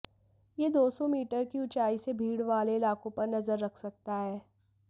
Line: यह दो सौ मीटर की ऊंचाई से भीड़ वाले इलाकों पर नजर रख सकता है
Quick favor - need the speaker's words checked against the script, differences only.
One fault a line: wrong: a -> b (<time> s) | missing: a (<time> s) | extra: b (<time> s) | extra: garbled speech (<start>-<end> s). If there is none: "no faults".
no faults